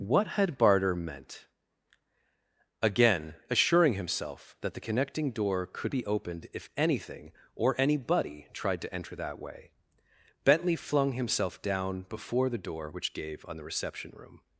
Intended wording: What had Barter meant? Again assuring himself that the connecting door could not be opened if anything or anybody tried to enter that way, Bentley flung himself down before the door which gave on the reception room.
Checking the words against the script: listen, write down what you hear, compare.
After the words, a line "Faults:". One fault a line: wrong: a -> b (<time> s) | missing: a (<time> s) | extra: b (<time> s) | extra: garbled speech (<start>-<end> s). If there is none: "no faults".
What had Barter meant? Again assuring himself that the connecting door could be opened if anything or anybody tried to enter that way, Bentley flung himself down before the door which gave on the reception room.
Faults:
missing: not (5.9 s)